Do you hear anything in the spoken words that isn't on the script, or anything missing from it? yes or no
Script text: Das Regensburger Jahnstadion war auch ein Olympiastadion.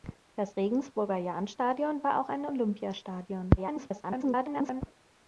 yes